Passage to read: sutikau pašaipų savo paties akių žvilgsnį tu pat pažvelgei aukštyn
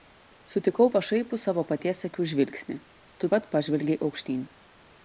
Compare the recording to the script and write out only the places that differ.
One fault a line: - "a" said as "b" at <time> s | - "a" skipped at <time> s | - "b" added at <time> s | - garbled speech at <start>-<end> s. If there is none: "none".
none